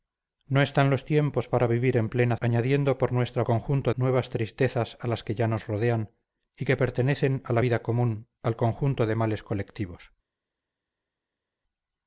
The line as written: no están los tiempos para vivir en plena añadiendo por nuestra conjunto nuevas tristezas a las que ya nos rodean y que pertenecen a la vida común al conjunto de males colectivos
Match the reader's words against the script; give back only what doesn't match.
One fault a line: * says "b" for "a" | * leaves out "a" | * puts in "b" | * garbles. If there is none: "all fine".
all fine